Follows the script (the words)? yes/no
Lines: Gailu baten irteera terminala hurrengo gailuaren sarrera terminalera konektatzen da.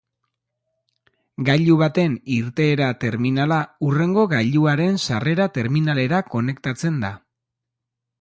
yes